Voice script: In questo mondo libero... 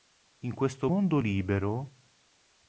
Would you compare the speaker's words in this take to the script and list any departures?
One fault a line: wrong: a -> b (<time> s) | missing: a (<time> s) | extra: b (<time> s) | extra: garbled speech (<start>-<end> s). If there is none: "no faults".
no faults